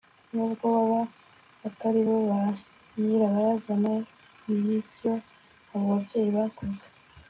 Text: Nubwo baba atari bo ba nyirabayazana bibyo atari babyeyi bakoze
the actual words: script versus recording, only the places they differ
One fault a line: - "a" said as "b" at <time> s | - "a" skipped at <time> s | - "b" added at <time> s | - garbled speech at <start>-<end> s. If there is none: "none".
- "atari" said as "abo" at 5.7 s